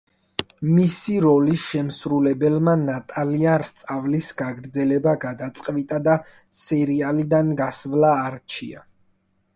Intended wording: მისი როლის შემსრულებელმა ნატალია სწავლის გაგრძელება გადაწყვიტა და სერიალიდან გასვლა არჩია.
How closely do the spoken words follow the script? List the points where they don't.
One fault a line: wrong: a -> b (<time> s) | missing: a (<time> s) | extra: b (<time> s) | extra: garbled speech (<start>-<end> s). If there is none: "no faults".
no faults